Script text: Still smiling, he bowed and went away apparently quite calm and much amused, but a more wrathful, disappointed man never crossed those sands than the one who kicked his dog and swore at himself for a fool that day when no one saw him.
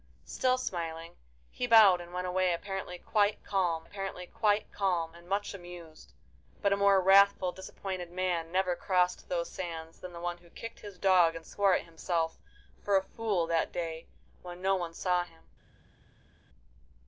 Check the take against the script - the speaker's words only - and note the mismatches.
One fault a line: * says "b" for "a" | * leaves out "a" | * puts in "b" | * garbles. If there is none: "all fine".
* puts in "apparently quite calm"